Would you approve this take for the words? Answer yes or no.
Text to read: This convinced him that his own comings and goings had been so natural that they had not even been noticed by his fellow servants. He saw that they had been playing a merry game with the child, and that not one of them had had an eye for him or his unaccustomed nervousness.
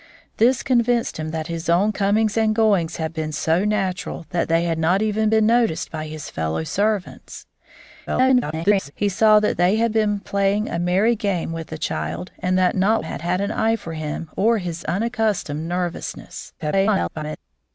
no